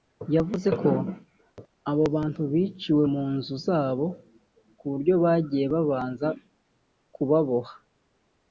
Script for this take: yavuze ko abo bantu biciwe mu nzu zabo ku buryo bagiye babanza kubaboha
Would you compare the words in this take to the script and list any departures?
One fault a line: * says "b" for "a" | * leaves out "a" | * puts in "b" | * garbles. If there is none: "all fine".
all fine